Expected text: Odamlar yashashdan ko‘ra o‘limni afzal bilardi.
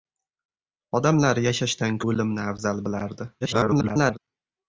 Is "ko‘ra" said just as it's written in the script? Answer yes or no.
no